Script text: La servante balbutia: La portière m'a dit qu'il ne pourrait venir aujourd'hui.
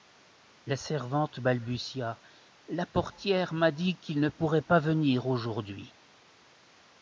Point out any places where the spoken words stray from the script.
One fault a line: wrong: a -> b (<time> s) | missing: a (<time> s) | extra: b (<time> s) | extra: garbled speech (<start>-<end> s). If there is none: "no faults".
extra: pas (4.6 s)